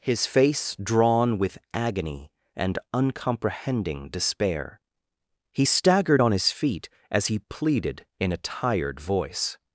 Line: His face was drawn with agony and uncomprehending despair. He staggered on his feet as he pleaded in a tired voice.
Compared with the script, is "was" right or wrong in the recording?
wrong